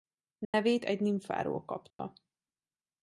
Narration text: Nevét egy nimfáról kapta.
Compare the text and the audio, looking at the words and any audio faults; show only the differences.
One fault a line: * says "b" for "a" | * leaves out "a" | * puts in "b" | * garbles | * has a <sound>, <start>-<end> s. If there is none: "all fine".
* has a dropout, 0.4-0.5 s
* has a dropout, 1.9-2.0 s